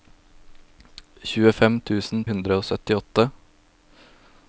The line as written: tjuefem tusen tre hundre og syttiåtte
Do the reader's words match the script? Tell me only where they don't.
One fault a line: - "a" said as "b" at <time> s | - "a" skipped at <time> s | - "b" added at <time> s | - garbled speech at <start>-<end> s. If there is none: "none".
- "tre" skipped at 2.2 s